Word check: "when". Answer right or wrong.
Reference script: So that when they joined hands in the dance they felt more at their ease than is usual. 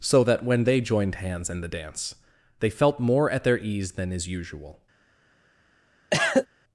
right